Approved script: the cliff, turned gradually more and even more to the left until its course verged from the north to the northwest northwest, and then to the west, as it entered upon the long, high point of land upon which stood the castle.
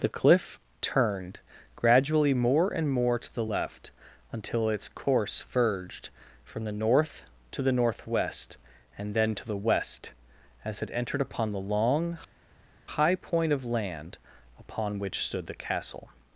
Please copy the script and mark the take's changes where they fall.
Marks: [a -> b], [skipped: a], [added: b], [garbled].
the cliff, turned gradually more and [skipped: even] more to the left until its course verged from the north to the northwest [skipped: northwest,] and then to the west, as it entered upon the long, high point of land upon which stood the castle.